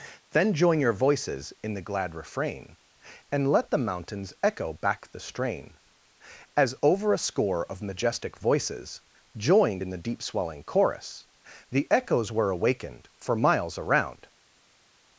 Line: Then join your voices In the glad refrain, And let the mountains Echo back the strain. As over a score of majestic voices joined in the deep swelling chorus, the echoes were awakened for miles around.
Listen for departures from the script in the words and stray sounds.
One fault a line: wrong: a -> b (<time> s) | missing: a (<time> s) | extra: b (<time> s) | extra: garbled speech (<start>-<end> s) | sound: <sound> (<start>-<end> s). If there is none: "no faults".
no faults